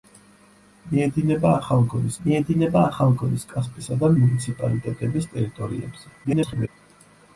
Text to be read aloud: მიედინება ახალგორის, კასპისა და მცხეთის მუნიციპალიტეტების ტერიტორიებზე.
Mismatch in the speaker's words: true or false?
true